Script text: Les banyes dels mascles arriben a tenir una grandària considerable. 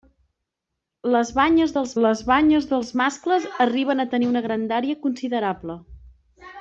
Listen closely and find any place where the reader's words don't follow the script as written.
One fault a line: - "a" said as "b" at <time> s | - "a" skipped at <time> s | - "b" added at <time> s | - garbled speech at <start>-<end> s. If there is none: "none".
- "les banyes dels" added at 2.1 s